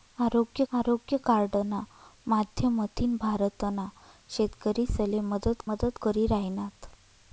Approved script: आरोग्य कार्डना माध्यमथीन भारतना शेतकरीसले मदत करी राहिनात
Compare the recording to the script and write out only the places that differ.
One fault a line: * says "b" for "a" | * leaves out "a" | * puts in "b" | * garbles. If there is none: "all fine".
* puts in "आरोग्य"
* puts in "मदत"